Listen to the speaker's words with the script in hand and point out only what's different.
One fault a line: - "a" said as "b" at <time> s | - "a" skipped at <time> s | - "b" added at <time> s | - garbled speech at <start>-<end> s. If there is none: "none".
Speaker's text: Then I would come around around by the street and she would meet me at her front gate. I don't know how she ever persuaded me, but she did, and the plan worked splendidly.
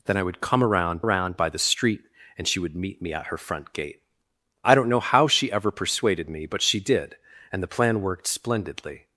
none